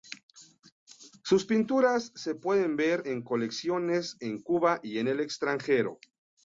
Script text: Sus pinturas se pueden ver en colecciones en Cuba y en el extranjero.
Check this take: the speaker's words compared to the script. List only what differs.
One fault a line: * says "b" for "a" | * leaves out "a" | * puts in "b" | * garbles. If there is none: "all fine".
all fine